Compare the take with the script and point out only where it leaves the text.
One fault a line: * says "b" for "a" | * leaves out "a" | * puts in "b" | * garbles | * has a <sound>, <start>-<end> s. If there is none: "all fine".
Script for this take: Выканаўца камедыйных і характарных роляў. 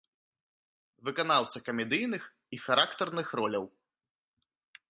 all fine